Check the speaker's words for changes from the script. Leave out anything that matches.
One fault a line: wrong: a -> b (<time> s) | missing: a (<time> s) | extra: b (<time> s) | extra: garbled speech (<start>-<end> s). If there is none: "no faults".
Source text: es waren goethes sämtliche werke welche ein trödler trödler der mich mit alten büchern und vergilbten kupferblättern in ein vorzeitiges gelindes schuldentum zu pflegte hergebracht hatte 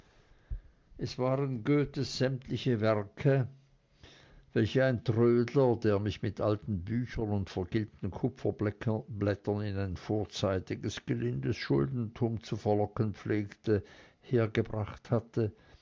missing: trödler (5.8 s)
extra: verlocken (12.6 s)